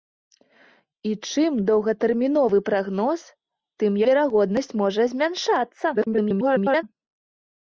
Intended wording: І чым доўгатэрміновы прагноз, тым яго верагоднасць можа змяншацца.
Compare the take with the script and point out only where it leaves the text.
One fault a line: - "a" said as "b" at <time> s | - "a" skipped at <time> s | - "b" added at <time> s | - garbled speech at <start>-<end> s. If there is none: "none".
- "яго" skipped at 4.0 s
- garbled speech at 5.9-6.8 s